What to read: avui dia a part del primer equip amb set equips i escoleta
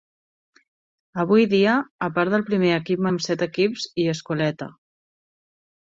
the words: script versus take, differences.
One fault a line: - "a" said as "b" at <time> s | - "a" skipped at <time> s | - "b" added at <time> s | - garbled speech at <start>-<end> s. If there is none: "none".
none